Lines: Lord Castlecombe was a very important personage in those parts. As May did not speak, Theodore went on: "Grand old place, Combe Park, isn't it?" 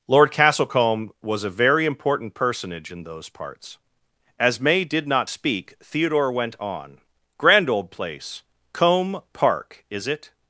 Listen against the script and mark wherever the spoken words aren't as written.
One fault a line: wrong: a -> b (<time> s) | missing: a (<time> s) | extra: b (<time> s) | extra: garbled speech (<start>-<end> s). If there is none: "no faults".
wrong: isn't -> is (9.9 s)